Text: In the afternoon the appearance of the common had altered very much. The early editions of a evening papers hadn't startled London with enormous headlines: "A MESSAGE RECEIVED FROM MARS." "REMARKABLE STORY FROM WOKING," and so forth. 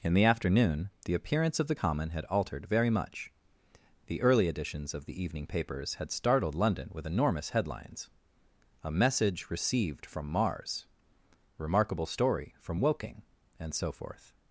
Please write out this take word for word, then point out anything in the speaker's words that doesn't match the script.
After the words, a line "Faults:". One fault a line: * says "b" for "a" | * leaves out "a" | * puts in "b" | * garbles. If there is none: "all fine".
In the afternoon the appearance of the common had altered very much. The early editions of the evening papers had startled London with enormous headlines: "A MESSAGE RECEIVED FROM MARS." "REMARKABLE STORY FROM WOKING," and so forth.
Faults:
* says "the" for "a"
* says "had" for "hadn't"